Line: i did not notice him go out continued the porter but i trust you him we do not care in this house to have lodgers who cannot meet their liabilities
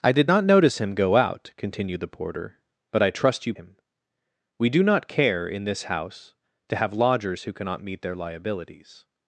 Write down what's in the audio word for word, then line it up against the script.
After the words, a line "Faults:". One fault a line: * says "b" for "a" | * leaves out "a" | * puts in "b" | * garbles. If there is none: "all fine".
i did not notice him go out continued the porter but i trust you him we do not care in this house to have lodgers who cannot meet their liabilities
Faults:
all fine